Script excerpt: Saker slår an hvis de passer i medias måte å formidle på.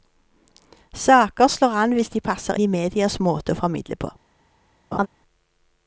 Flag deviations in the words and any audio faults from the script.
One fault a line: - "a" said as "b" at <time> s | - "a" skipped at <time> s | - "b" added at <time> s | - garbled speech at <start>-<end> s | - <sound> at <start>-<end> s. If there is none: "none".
- laugh at 4.9-5.1 s